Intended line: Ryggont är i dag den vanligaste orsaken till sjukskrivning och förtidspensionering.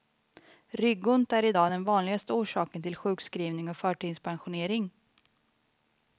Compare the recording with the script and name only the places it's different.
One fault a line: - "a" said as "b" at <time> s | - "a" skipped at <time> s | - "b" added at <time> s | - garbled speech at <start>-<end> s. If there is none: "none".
none